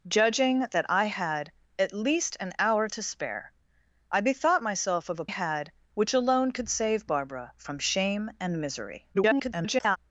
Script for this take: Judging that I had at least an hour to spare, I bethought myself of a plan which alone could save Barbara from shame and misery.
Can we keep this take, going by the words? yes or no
no